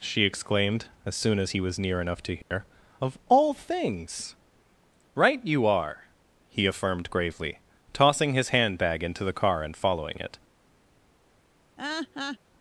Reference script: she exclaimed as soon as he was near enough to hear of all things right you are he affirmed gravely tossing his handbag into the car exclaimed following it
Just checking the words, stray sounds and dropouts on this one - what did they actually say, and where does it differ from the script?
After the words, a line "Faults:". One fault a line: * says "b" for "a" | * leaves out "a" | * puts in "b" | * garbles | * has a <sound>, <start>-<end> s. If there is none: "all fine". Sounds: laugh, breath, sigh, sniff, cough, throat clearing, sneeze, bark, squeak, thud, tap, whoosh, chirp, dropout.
she exclaimed as soon as he was near enough to hear of all things right you are he affirmed gravely tossing his handbag into the car and following it
Faults:
* has a dropout, 2.4-2.5 s
* says "and" for "exclaimed"
* has a laugh, 11.8-12.4 s